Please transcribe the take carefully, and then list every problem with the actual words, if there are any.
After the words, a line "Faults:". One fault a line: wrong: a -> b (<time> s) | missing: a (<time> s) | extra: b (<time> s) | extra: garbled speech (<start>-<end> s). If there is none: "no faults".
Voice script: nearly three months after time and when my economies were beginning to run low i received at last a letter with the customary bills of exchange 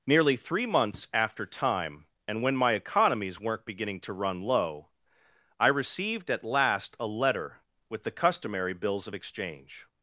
nearly three months after time and when my economies weren't beginning to run low i received at last a letter with the customary bills of exchange
Faults:
wrong: were -> weren't (3.4 s)